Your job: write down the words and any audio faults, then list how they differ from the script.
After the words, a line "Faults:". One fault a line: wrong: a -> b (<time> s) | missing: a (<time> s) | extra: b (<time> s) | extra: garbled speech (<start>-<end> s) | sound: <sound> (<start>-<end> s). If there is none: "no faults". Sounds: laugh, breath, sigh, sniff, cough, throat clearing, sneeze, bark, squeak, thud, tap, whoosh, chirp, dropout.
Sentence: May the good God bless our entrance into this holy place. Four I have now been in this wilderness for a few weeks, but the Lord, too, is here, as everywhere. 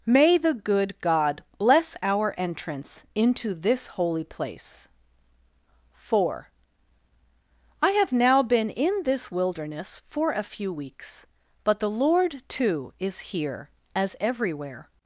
May the good God bless our entrance into this holy place. Four I have now been in this wilderness for a few weeks, but the Lord, too, is here, as everywhere.
Faults:
no faults